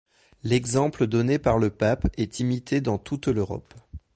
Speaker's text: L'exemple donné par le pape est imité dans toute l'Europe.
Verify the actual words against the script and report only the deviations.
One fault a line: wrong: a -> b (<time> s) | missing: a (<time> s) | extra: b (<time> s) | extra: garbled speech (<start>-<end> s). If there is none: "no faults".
no faults